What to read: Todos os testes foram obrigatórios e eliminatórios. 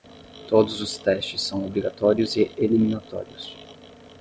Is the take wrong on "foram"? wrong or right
wrong